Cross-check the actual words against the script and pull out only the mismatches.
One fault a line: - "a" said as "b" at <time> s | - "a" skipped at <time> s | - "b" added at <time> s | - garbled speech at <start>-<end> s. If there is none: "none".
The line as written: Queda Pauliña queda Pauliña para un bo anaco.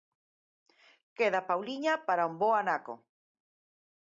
- "queda Pauliña" skipped at 1.9 s